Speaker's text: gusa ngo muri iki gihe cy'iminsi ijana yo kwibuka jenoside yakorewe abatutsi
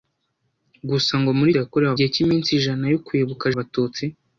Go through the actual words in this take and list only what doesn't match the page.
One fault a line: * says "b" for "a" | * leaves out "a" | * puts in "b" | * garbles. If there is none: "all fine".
* says "yakorewe" for "iki"
* leaves out "jenoside yakorewe"